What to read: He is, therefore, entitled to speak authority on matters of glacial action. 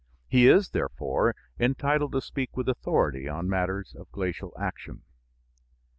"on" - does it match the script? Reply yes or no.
yes